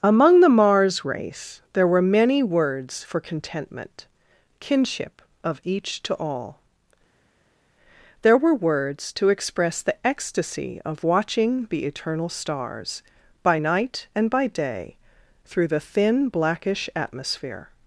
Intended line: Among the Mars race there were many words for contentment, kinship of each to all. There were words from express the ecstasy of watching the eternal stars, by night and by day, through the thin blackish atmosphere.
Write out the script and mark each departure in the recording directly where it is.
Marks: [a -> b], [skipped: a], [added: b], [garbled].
Among the Mars race there were many words for contentment, kinship of each to all. There were words [from -> to] express the ecstasy of watching the eternal stars, by night and by day, through the thin blackish atmosphere.